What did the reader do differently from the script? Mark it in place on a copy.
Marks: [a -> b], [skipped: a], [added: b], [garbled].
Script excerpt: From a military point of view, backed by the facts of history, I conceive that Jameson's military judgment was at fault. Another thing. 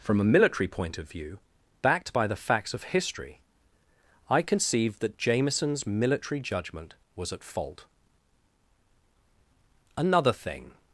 From a military point of view, backed by the facts of history, I conceive that Jameson's military judgment was at fault. Another thing.